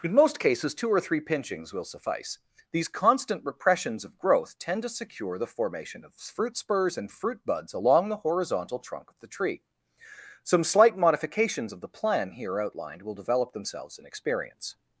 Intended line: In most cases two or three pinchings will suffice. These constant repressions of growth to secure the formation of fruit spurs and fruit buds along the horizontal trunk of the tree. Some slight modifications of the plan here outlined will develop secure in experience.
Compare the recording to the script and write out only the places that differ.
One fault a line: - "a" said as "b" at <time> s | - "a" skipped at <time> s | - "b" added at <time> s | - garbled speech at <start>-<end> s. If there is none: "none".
- "tend" added at 4.6 s
- "secure" said as "themselves" at 13.5 s